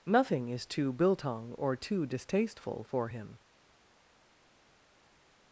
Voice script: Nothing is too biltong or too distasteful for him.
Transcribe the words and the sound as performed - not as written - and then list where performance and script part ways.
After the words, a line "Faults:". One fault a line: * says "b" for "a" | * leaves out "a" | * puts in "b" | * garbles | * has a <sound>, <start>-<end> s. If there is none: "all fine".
Nothing is too biltong or too distasteful for him.
Faults:
all fine